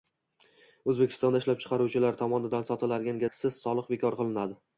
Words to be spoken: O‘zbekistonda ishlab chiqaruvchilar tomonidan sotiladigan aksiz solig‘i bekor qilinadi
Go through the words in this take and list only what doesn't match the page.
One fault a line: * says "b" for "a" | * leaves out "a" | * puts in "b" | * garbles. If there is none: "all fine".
all fine